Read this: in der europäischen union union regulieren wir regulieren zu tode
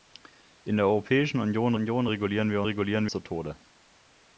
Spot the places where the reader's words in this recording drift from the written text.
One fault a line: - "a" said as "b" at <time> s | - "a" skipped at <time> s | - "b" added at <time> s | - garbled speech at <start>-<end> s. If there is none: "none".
none